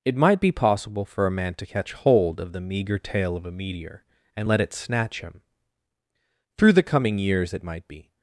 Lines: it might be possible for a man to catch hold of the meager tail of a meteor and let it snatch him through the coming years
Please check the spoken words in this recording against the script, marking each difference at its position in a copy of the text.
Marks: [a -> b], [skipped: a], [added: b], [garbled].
it might be possible for a man to catch hold of the meager tail of a meteor and let it snatch him through the coming years [added: it might be]